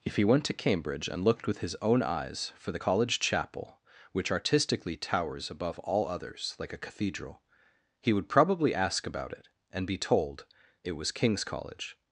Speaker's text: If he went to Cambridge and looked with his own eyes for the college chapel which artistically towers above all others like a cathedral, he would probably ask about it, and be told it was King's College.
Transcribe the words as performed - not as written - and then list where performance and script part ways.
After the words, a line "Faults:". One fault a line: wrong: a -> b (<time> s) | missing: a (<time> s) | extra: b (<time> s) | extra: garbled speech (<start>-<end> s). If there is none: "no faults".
If he went to Cambridge and looked with his own eyes for the college chapel which artistically towers above all others like a cathedral, he would probably ask about it, and be told it was King's College.
Faults:
no faults